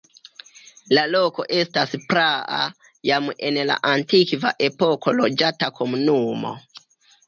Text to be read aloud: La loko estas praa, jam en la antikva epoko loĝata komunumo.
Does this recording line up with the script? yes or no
yes